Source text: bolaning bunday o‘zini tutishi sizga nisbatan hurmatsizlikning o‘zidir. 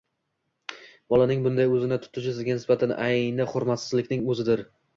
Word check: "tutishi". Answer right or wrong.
right